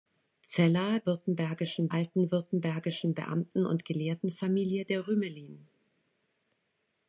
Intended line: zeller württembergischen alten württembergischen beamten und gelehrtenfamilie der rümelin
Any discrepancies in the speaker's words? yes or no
no